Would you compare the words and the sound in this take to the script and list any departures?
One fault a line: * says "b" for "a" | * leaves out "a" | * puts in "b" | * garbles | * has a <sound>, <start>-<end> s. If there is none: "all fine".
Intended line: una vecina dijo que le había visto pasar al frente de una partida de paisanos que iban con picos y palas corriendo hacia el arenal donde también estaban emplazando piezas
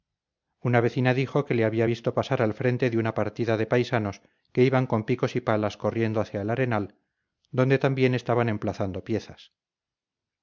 all fine